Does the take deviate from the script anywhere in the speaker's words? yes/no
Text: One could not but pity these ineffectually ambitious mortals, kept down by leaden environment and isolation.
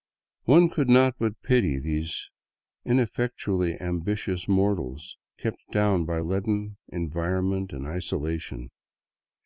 no